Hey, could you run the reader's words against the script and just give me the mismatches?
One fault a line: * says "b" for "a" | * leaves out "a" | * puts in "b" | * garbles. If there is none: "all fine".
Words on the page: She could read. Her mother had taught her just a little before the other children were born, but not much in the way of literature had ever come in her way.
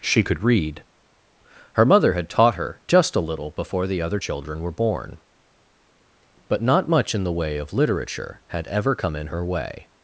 all fine